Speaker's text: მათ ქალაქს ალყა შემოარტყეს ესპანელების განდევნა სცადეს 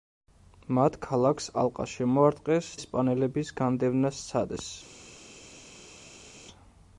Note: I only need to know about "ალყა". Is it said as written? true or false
true